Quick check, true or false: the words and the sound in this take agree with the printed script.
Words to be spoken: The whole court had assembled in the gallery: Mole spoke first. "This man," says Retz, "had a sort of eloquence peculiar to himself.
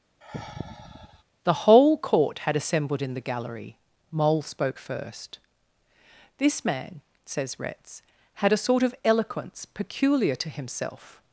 false